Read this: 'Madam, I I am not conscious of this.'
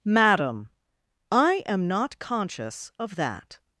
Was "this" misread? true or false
true